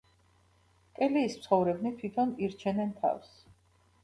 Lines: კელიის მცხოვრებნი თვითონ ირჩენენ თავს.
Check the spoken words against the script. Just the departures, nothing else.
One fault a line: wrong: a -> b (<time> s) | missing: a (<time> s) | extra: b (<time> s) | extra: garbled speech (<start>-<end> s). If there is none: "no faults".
no faults